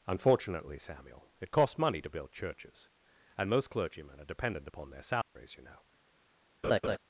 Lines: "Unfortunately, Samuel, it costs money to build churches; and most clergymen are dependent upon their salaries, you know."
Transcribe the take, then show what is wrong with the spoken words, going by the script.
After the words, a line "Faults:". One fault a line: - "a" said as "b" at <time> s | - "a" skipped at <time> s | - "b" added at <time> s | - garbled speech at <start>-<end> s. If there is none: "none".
"Unfortunately, Samuel, it costs money to build churches; and most clergymen are dependent upon their salaries, you know."
Faults:
none